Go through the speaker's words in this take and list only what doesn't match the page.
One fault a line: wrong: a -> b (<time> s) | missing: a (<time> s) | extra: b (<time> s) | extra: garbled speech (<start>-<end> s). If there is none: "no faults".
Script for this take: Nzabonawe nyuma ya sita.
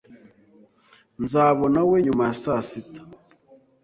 extra: saa (2.4 s)